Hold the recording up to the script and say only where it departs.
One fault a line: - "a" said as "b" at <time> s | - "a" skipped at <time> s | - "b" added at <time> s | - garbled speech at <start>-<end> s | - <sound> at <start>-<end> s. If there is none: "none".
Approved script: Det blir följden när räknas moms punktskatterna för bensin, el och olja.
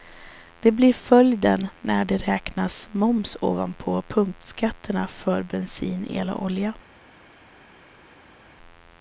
- "det" added at 2.0 s
- "ovanpå" added at 3.4 s